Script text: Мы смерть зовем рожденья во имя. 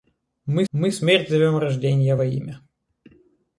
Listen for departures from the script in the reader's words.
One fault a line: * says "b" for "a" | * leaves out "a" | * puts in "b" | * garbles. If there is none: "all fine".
* puts in "мы"